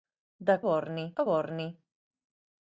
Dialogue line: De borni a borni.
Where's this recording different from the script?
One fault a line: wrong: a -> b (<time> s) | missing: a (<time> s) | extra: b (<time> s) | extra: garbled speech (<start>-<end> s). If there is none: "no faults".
no faults